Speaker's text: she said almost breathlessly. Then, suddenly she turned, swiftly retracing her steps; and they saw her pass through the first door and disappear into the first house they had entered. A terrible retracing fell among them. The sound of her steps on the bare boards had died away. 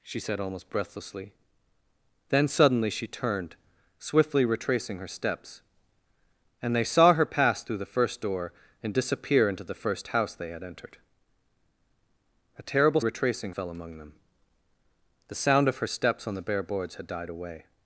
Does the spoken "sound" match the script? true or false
true